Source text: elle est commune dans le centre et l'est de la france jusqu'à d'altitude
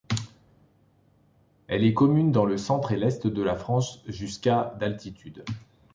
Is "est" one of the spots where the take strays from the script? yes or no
no